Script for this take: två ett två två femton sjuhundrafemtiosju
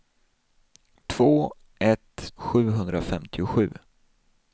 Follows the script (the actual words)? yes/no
no